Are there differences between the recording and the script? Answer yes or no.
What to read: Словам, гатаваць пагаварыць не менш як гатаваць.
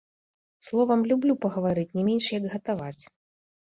yes